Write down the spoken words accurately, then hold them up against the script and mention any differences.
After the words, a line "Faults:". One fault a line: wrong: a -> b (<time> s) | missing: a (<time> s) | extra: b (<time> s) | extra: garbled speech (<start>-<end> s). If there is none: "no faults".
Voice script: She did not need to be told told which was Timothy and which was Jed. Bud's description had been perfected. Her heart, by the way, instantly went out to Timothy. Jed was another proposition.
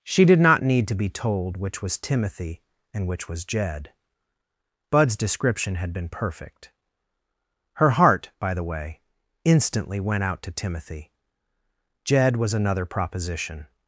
She did not need to be told which was Timothy and which was Jed. Bud's description had been perfect. Her heart, by the way, instantly went out to Timothy. Jed was another proposition.
Faults:
missing: told (1.6 s)
wrong: perfected -> perfect (6.1 s)